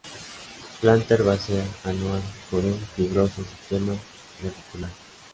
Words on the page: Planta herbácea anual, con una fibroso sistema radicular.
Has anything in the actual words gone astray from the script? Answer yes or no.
yes